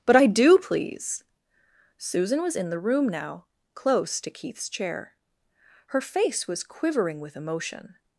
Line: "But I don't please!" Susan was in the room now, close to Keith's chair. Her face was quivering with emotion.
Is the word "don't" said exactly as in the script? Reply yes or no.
no